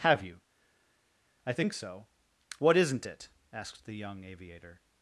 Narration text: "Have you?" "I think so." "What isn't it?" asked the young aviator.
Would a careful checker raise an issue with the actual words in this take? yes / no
no